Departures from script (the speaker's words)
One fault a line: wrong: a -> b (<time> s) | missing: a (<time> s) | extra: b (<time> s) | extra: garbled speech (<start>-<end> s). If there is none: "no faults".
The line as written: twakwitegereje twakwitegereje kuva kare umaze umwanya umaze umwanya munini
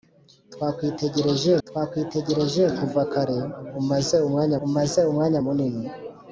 no faults